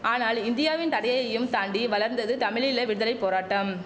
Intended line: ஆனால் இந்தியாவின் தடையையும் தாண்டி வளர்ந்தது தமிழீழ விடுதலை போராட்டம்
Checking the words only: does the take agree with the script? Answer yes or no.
yes